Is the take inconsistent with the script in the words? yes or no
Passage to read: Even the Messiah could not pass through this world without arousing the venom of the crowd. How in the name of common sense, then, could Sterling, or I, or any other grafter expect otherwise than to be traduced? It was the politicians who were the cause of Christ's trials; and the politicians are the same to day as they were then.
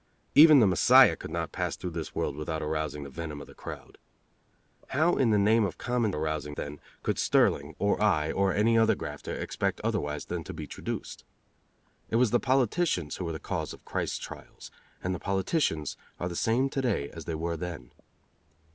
yes